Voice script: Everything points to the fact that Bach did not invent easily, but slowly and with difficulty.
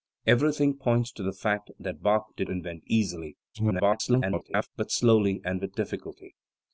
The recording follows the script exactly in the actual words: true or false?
false